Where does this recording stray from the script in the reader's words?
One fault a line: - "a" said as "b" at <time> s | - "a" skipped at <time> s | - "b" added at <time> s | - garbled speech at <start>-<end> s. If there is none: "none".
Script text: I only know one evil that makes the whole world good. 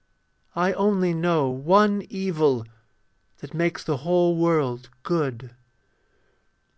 none